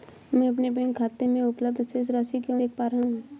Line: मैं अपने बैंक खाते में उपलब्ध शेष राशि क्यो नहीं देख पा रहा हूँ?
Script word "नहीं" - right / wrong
wrong